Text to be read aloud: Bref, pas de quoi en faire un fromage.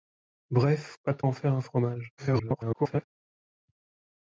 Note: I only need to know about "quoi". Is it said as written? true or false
false